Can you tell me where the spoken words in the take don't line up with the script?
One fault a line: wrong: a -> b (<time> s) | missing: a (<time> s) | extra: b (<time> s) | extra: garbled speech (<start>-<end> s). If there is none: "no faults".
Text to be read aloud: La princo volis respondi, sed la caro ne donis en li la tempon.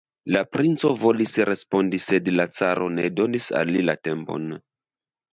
wrong: en -> al (3.6 s)